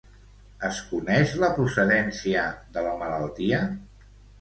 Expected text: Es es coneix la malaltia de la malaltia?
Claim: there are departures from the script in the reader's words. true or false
true